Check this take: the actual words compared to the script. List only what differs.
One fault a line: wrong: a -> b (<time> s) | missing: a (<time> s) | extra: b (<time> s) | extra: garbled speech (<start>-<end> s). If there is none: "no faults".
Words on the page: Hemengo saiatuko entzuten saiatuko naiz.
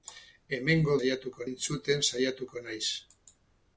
no faults